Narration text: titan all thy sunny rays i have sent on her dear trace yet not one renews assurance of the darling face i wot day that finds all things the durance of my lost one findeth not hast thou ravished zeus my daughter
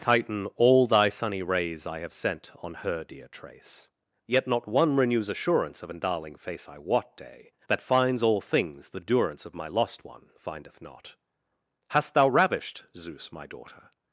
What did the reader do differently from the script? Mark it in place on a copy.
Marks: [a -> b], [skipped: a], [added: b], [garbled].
titan all thy sunny rays i have sent on her dear trace yet not one renews assurance of [the -> an] darling face i wot day that finds all things the durance of my lost one findeth not hast thou ravished zeus my daughter